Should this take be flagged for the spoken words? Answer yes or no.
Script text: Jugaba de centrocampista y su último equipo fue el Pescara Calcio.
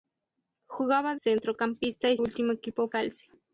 yes